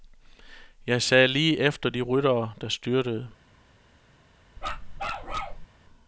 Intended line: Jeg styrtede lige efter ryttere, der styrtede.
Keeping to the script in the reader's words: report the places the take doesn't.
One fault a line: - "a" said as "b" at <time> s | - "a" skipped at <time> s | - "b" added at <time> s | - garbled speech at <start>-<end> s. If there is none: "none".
- "styrtede" said as "sad" at 1.0 s
- "de" added at 1.9 s